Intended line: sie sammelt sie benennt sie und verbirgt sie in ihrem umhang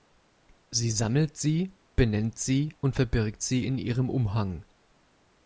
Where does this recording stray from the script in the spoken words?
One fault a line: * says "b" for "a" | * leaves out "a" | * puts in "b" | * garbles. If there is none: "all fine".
all fine